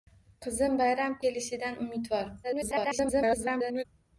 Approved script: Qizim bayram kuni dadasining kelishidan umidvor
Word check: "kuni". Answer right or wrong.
wrong